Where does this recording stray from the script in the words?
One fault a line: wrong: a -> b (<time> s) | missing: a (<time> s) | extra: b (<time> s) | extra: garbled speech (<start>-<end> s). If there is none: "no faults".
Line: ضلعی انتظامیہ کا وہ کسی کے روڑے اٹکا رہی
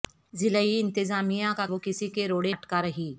no faults